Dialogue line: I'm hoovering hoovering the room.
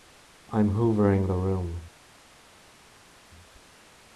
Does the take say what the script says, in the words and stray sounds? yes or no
no